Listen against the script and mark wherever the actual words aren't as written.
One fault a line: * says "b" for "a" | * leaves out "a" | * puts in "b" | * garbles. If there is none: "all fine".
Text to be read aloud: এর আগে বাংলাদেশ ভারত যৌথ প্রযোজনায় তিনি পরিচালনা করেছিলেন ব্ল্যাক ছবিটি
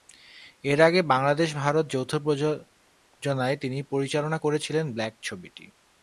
all fine